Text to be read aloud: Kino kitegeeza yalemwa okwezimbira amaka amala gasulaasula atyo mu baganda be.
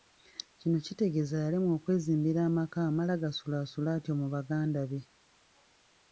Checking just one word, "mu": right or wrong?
right